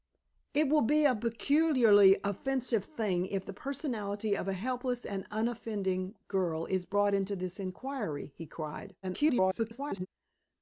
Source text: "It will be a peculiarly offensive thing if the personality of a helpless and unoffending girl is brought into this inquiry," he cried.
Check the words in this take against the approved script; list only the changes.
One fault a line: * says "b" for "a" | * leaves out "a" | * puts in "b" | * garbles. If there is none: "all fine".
* garbles